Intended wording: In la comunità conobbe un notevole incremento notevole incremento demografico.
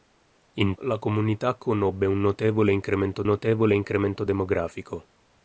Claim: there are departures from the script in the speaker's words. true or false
false